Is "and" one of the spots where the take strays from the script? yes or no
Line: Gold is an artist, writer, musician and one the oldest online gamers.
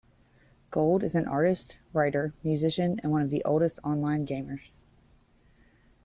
no